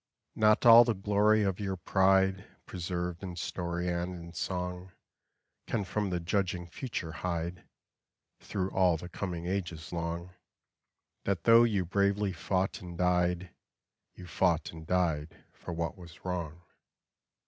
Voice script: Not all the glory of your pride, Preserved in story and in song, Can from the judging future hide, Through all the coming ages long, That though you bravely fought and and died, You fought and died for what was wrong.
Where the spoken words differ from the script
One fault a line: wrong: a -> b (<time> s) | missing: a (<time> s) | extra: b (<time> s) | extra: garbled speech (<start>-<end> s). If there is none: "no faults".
missing: and (13.0 s)